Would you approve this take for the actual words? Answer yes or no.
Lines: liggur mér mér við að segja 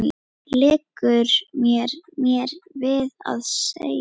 yes